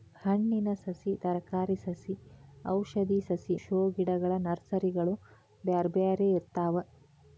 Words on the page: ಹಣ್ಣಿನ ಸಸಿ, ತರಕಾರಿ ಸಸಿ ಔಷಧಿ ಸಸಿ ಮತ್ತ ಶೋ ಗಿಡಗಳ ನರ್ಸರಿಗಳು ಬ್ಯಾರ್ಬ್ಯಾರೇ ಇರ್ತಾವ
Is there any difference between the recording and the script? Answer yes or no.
yes